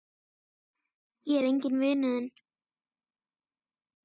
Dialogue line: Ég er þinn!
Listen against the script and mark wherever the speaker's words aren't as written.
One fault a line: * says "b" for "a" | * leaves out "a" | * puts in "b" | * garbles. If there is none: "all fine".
* puts in "enginn vinur"